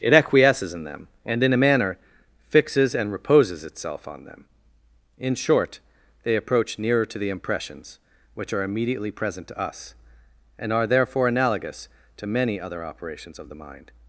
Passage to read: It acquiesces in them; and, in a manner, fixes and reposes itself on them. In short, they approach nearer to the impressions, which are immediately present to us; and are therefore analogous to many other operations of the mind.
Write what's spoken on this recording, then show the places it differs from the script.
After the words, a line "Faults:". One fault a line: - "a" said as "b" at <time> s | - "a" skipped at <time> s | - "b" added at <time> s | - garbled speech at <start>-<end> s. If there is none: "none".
It acquiesces in them; and, in a manner, fixes and reposes itself on them. In short, they approach nearer to the impressions, which are immediately present to us; and are therefore analogous to many other operations of the mind.
Faults:
none